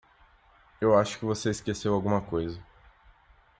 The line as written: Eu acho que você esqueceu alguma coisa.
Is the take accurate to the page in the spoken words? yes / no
yes